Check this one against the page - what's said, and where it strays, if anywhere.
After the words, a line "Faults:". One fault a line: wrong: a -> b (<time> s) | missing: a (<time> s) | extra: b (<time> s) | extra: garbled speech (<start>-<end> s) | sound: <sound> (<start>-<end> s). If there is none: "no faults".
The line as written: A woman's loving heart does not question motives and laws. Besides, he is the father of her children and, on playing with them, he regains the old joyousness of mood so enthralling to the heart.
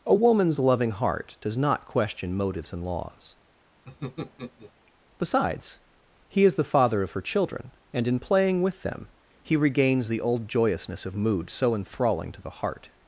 A woman's loving heart does not question motives and laws. Besides, he is the father of her children and, in playing with them, he regains the old joyousness of mood so enthralling to the heart.
Faults:
sound: laugh (3.9-4.7 s)
wrong: on -> in (8.1 s)